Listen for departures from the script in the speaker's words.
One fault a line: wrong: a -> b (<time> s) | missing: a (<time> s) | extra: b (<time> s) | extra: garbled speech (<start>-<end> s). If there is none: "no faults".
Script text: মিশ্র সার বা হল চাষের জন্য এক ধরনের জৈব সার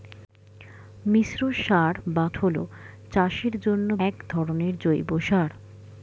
no faults